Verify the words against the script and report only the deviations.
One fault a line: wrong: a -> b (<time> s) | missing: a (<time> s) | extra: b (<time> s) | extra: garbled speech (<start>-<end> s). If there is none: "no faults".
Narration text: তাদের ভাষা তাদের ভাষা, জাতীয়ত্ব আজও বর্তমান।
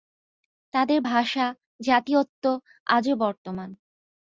missing: তাদের ভাষা (1.5 s)